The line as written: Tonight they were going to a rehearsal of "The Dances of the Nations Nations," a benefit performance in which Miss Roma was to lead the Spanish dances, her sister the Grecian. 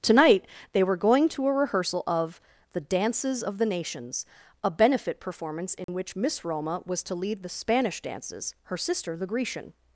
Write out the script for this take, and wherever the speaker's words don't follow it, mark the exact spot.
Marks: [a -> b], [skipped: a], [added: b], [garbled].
Tonight they were going to a rehearsal of "The Dances of the Nations [skipped: Nations,"] a benefit performance in which Miss Roma was to lead the Spanish dances, her sister the Grecian.